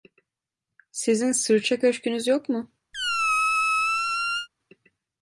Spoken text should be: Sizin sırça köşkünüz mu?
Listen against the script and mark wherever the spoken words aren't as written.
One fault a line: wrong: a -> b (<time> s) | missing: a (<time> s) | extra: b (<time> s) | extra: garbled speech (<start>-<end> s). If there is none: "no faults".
extra: yok (2.3 s)